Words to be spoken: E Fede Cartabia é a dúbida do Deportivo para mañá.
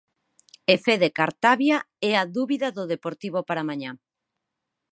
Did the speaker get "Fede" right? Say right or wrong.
right